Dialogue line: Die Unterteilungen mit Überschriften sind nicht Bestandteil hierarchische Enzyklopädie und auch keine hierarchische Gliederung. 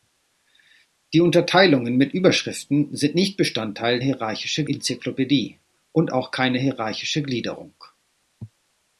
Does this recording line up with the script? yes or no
yes